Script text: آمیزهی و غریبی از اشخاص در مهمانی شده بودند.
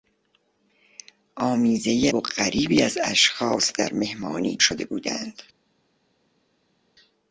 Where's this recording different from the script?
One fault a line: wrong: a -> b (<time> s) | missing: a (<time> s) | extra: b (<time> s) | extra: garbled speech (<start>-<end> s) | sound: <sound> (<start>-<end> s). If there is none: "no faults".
no faults